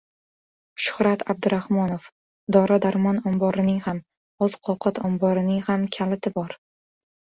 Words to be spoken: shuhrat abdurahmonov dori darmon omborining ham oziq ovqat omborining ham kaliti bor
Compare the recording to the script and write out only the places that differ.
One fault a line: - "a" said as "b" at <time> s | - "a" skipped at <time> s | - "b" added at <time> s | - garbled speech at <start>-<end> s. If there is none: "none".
none